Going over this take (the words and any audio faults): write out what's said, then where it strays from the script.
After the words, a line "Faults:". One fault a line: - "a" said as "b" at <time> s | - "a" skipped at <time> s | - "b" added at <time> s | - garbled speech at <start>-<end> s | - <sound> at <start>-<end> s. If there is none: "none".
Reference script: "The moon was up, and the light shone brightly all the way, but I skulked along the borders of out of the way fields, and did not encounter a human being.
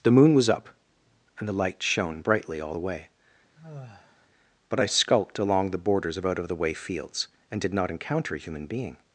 "The moon was up, and the light shone brightly all the way, but I skulked along the borders of out of the way fields, and did not encounter a human being.
Faults:
- sigh at 3.6-4.3 s